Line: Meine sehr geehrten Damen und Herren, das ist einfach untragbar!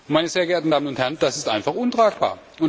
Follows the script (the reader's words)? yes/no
yes